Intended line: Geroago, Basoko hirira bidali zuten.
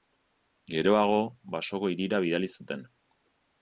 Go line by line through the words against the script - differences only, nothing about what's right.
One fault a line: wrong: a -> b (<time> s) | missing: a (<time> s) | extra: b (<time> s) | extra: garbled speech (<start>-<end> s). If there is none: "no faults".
no faults